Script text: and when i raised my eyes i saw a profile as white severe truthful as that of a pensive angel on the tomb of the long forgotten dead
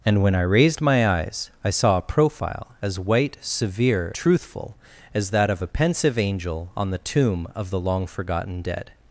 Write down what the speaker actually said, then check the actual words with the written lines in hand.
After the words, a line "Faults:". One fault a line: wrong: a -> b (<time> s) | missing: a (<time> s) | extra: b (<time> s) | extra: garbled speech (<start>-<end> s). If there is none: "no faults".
and when i raised my eyes i saw a profile as white severe truthful as that of a pensive angel on the tomb of the long forgotten dead
Faults:
no faults